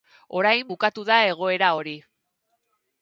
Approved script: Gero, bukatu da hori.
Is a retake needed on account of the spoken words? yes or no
yes